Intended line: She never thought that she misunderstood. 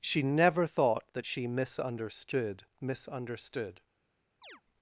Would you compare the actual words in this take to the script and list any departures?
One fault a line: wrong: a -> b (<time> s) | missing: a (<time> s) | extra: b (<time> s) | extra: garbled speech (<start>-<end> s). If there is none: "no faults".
extra: misunderstood (2.8 s)